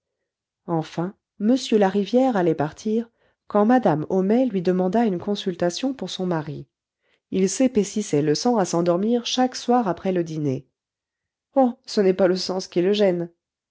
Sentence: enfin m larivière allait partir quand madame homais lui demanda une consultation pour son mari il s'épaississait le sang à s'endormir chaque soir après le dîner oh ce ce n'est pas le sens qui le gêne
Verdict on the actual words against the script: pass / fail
fail